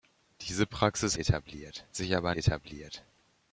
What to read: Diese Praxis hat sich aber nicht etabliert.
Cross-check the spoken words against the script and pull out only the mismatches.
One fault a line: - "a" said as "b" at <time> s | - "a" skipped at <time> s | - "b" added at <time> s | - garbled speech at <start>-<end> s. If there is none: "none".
- "hat" said as "etabliert" at 1.1 s
- "nicht" skipped at 2.4 s